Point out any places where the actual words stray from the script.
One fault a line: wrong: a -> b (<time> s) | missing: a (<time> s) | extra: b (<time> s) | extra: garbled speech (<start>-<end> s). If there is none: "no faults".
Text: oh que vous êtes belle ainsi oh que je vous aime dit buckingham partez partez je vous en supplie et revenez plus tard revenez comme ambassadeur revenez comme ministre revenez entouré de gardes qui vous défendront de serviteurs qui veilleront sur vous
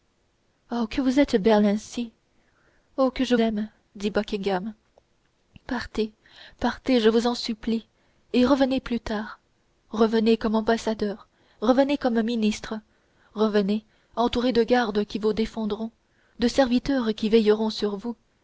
missing: vous (3.4 s)